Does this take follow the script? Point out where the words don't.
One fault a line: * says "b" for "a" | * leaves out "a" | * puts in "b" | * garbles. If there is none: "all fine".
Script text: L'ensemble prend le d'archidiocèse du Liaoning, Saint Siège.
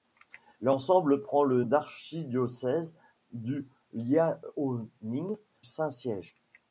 all fine